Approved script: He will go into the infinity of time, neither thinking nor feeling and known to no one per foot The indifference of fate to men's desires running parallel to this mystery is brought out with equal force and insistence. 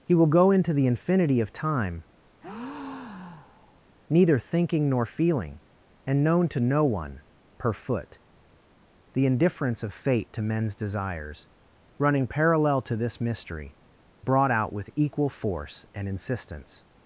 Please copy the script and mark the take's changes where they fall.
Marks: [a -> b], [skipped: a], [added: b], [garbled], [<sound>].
He will go into the infinity of time, [breath] neither thinking nor feeling and known to no one per foot The indifference of fate to men's desires running parallel to this mystery [skipped: is] brought out with equal force and insistence.